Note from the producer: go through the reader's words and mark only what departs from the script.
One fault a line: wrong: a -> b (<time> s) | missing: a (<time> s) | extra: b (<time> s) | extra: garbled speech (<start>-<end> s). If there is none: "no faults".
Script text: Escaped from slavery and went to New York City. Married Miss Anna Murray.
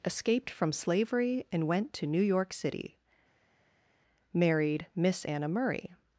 no faults